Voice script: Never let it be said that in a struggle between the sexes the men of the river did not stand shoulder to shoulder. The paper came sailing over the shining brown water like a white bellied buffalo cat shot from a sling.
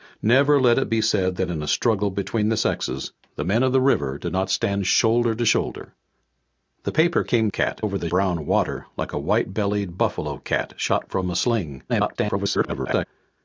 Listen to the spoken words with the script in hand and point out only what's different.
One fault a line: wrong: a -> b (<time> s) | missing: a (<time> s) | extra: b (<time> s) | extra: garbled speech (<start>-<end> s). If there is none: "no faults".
wrong: sailing -> cat (7.5 s)
missing: shining (8.1 s)
extra: garbled speech (11.9-13.1 s)